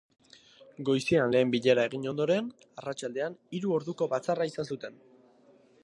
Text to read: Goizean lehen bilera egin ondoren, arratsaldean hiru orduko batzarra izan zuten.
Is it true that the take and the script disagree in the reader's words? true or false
false